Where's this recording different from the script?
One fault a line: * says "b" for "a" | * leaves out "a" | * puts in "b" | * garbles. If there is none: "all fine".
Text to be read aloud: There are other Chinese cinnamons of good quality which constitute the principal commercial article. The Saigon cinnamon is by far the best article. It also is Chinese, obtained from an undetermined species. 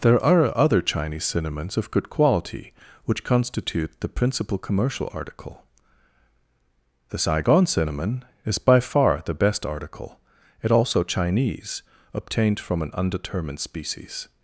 * leaves out "is"